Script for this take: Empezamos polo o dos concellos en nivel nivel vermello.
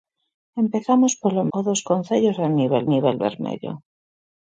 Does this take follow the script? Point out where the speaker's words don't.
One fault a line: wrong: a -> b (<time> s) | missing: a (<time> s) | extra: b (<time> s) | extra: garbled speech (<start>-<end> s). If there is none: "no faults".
no faults